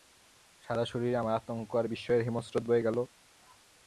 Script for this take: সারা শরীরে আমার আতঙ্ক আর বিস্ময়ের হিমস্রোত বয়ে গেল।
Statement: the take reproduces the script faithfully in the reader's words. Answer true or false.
true